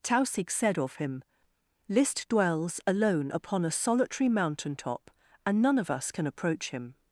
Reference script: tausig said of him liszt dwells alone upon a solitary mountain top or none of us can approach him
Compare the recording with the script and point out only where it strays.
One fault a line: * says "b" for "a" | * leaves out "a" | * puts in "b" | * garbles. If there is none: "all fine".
* says "and" for "or"